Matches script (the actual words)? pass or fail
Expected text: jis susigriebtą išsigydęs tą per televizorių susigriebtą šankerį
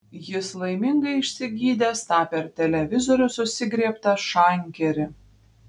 fail